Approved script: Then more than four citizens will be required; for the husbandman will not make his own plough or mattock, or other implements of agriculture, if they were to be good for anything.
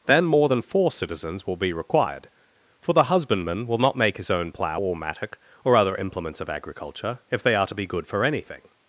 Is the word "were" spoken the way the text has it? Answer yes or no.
no